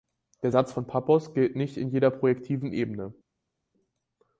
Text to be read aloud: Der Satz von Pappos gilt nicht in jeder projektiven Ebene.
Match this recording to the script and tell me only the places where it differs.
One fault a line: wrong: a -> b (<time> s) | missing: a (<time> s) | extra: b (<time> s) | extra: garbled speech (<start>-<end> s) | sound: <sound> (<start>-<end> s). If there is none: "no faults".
no faults